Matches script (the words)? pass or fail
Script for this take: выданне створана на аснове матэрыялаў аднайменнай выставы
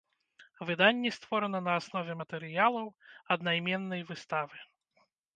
pass